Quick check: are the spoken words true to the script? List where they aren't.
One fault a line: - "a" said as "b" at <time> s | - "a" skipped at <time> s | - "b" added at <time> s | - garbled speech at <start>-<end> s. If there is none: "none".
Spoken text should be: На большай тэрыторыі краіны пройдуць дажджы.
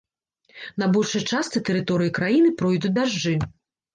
- "частцы" added at 1.3 s